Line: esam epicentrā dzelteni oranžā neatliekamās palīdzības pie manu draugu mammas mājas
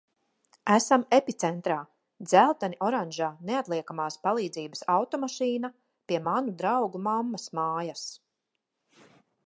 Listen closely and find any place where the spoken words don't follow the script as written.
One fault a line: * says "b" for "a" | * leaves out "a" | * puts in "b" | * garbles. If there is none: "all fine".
* puts in "automašīna"